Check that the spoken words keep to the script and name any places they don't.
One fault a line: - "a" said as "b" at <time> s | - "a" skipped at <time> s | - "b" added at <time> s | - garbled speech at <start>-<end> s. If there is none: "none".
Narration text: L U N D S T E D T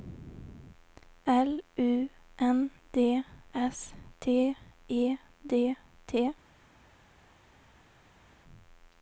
none